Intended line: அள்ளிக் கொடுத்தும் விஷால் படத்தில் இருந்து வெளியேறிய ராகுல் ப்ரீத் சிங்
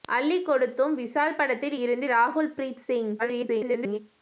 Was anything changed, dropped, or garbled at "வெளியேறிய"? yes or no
yes